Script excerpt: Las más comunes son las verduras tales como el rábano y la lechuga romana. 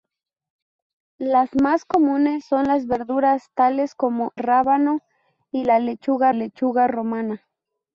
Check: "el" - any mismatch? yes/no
yes